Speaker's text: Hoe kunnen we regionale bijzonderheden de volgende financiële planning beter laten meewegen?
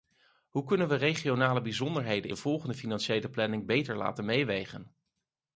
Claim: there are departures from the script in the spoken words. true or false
false